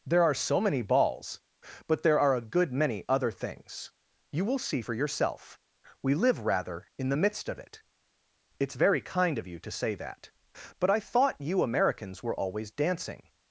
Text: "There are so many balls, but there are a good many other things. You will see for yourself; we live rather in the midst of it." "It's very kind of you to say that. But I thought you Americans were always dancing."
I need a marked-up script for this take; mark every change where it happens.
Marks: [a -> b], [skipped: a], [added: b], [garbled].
"There are so many balls, but there are a good many other things. You will see for yourself; we live rather in the midst of it." "It's very kind of you to say that. But I thought you Americans were always dancing."